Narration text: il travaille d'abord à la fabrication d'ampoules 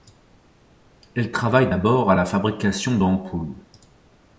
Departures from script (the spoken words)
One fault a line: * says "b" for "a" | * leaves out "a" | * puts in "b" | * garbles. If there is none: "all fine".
* says "elle" for "il"